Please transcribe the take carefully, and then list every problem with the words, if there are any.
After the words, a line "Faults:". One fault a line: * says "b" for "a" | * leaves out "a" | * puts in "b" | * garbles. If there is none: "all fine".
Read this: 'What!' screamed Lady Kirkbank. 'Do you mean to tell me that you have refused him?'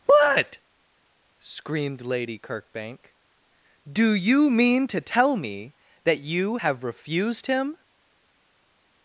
'What!' screamed Lady Kirkbank. 'Do you mean to tell me that you have refused him?'
Faults:
all fine